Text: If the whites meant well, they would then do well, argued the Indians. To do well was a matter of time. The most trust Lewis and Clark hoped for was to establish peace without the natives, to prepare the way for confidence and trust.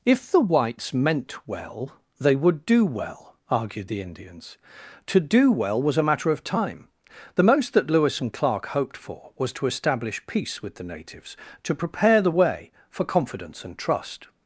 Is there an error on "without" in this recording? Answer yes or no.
yes